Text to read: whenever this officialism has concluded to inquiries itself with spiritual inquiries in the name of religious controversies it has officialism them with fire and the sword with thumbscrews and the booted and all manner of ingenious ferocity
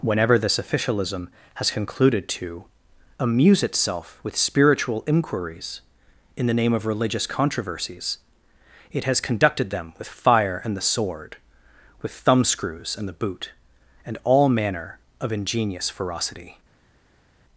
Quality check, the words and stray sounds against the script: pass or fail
fail